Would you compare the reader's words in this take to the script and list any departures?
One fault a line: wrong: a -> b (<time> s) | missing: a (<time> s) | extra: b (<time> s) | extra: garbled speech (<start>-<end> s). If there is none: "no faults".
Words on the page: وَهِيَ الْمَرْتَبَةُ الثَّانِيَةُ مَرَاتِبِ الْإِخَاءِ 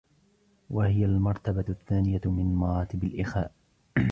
extra: مِنْ (2.2 s)